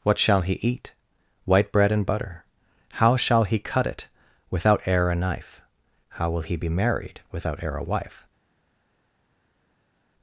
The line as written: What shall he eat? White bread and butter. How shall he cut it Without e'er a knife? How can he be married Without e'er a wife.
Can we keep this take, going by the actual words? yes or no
no